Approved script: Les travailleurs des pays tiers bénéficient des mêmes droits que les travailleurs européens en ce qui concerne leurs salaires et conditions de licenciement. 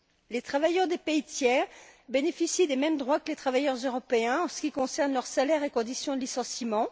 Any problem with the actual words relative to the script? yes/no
no